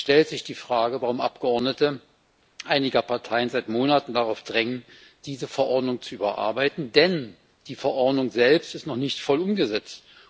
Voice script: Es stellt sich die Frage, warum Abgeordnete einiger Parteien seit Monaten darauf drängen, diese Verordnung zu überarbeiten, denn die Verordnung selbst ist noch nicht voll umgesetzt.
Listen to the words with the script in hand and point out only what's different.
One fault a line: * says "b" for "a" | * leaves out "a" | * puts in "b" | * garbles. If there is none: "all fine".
all fine